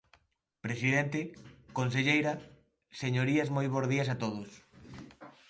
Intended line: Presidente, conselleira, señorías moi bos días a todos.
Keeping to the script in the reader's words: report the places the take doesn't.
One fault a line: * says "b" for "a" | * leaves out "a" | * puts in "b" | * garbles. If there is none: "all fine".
all fine